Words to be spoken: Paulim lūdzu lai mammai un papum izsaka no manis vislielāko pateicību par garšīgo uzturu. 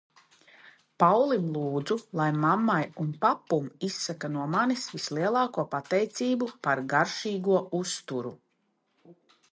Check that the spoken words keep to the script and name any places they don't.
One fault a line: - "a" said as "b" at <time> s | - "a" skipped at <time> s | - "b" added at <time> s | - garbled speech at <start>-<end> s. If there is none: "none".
none